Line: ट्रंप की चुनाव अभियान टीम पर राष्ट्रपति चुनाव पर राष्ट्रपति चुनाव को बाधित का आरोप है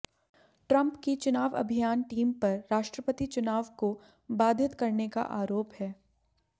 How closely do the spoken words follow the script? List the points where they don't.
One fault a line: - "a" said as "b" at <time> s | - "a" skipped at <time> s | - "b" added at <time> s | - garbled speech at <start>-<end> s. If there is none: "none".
- "पर राष्ट्रपति चुनाव" skipped at 3.7 s
- "करने" added at 4.7 s